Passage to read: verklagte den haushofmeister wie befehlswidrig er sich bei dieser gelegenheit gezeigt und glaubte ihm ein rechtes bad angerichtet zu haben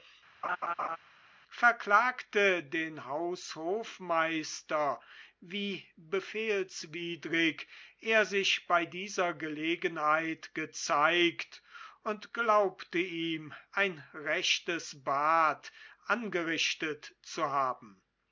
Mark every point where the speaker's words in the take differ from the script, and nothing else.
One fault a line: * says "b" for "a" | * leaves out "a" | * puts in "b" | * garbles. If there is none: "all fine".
all fine